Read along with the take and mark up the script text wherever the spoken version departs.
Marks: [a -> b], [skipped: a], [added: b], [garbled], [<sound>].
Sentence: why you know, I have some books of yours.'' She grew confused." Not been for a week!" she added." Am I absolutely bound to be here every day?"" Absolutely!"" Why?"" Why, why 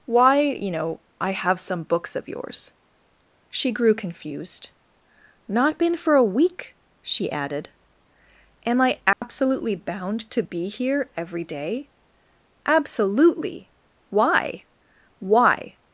why you know, I have some books of yours.'' She grew confused." Not been for a week!" she added." Am I absolutely [dropout] bound to be here every day?"" Absolutely!"" Why?"" Why, [skipped: why]